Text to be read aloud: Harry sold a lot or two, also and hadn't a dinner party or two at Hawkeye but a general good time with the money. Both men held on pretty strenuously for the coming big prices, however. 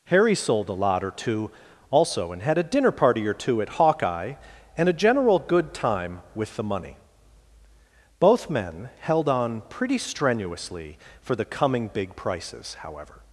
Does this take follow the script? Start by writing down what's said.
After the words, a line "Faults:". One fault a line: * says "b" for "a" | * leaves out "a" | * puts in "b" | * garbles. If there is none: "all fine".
Harry sold a lot or two, also and had a dinner party or two at Hawkeye and a general good time with the money. Both men held on pretty strenuously for the coming big prices, however.
Faults:
* says "had" for "hadn't"
* says "and" for "but"